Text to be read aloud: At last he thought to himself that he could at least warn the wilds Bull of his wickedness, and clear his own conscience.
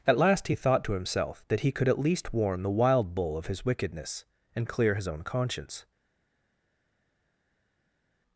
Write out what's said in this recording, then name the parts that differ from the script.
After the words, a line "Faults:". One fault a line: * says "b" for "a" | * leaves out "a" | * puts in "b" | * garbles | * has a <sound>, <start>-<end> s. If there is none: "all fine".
At last he thought to himself that he could at least warn the wild Bull of his wickedness, and clear his own conscience.
Faults:
* says "wild" for "wilds"